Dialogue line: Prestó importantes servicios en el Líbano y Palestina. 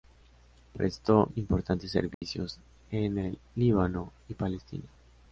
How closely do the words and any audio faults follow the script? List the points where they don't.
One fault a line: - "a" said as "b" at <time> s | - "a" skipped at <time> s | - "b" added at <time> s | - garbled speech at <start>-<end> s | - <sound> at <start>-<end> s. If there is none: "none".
- dropout at 2.1-2.2 s